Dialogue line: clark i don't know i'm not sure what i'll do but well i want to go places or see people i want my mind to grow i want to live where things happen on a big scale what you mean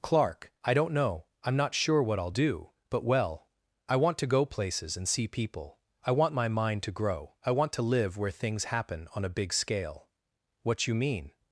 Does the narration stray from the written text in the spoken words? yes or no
yes